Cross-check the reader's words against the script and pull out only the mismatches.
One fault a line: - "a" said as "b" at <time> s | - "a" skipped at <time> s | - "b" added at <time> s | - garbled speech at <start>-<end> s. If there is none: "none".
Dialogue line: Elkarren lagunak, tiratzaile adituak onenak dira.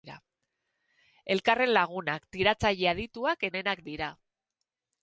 none